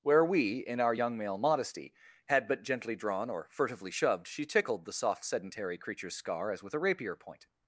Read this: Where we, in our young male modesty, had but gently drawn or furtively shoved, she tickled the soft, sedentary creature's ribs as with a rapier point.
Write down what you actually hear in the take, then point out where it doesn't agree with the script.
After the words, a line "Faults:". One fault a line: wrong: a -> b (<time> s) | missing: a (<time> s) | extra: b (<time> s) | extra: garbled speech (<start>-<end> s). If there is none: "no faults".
Where we, in our young male modesty, had but gently drawn or furtively shoved, she tickled the soft, sedentary creature's scar as with a rapier point.
Faults:
wrong: ribs -> scar (6.1 s)